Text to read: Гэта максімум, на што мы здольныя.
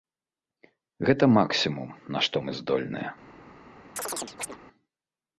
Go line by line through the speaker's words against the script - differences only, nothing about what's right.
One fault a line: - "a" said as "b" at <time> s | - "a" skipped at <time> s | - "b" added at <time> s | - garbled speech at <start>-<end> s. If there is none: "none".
none